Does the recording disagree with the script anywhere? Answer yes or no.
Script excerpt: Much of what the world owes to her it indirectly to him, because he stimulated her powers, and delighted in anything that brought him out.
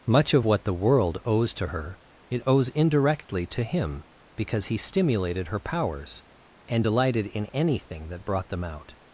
yes